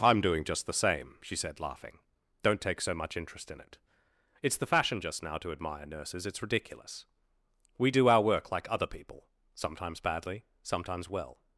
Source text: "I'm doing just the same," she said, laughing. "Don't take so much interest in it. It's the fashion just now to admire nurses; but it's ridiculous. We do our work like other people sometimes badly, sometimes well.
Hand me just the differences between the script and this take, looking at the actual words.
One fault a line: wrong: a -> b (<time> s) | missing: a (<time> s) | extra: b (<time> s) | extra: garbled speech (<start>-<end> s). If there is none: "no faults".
missing: but (6.2 s)